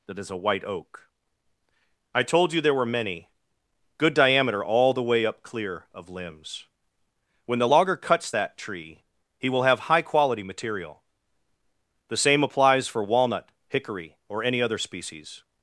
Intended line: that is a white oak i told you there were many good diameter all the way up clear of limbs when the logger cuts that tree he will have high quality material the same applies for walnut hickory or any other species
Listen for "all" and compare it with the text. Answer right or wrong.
right